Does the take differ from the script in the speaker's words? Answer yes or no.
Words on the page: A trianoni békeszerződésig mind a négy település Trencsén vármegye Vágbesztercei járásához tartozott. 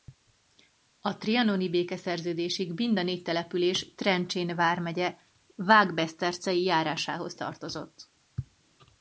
no